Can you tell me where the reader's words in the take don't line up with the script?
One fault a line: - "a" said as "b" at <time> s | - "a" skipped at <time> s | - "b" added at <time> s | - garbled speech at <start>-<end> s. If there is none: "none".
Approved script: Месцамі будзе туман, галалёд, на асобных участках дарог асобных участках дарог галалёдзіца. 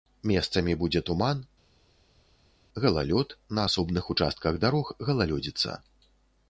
- "асобных участках дарог" skipped at 4.9 s